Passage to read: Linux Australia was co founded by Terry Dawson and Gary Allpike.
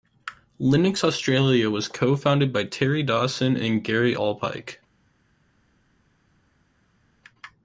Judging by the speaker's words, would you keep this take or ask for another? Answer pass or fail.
pass